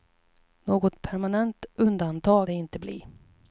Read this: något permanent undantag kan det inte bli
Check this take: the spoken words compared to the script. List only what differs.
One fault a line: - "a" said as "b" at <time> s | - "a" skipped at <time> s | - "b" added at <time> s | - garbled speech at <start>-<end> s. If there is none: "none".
- "kan" skipped at 2.5 s